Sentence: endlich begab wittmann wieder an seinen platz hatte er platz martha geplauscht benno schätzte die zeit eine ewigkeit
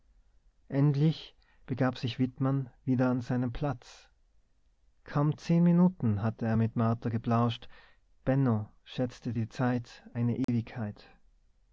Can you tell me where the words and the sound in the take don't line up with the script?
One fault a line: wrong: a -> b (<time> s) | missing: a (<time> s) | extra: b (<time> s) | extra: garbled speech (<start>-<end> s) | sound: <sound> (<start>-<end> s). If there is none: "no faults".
extra: sich (1.9 s)
extra: kaum zehn minuten (5.0 s)
wrong: platz -> mit (6.6 s)
sound: dropout (10.4-10.5 s)